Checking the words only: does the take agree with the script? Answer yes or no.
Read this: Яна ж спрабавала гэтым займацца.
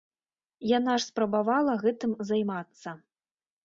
yes